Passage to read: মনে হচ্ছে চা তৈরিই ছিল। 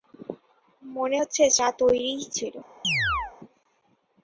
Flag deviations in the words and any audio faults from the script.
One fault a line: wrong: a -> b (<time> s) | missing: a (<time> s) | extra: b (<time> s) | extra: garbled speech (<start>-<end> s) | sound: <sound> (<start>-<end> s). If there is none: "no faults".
sound: chirp (2.8-3.3 s)